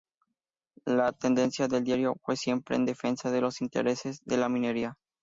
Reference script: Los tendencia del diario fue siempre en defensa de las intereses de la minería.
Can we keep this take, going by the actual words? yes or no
no